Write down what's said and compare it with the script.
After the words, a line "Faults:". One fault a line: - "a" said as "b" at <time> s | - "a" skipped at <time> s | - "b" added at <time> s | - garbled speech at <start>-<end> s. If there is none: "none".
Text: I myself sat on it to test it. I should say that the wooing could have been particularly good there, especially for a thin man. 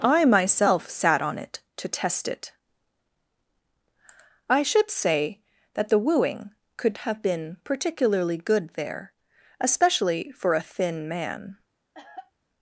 I myself sat on it to test it. I should say that the wooing could have been particularly good there, especially for a thin man.
Faults:
none